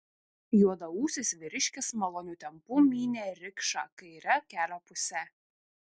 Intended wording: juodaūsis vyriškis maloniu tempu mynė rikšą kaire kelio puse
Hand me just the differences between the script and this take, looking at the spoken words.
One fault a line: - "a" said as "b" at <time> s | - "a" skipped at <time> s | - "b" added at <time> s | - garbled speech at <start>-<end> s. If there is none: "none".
none